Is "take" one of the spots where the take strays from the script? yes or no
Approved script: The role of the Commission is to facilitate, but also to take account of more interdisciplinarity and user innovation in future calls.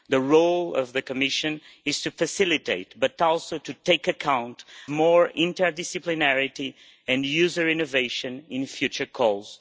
no